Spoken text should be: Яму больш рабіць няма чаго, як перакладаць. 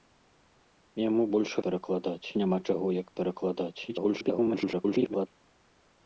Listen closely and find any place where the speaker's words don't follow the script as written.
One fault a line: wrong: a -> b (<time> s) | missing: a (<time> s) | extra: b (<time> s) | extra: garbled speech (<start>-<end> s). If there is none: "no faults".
wrong: рабіць -> перакладаць (1.7 s)
extra: garbled speech (3.9-5.3 s)